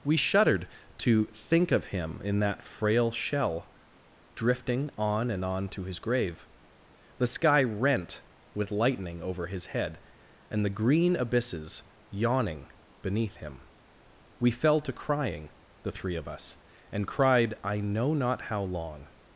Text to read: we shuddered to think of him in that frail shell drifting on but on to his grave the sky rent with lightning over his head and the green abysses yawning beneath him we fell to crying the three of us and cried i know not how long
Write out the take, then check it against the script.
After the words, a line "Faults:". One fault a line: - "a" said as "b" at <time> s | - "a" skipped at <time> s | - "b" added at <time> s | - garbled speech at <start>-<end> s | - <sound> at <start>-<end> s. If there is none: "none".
we shuddered to think of him in that frail shell drifting on and on to his grave the sky rent with lightning over his head and the green abysses yawning beneath him we fell to crying the three of us and cried i know not how long
Faults:
- "but" said as "and" at 5.3 s